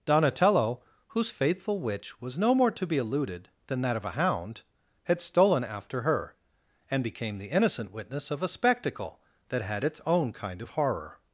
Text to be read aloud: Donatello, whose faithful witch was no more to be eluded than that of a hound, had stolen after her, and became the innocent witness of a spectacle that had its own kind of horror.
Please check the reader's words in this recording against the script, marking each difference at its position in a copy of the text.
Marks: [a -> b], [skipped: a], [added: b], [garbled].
Donatello, whose faithful witch was no more to be eluded than that of a hound, had stolen after her, and became the innocent witness of a spectacle that had its own kind of horror.